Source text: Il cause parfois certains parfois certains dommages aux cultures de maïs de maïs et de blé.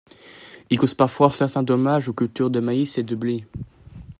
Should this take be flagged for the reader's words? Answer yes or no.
yes